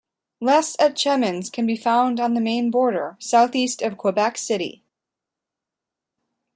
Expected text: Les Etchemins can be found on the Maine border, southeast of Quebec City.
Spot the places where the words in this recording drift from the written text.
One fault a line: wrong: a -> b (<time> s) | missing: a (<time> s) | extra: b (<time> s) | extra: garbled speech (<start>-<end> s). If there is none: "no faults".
no faults